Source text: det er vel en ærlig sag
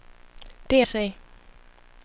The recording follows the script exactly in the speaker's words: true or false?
false